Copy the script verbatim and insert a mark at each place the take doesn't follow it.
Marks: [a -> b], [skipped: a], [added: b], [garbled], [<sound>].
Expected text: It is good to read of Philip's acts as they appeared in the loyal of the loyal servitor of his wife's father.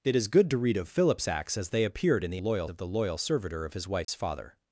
It is good to read of Philip's acts as they appeared in the loyal of the loyal servitor of his wife's [dropout] father.